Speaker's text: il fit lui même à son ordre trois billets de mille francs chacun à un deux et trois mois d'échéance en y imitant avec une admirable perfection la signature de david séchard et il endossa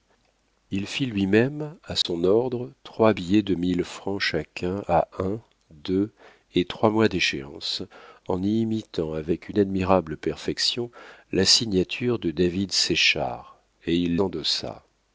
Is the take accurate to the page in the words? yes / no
yes